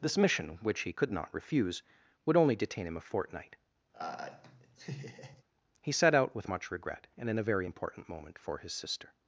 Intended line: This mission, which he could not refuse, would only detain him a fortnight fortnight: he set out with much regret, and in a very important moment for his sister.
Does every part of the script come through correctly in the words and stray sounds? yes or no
no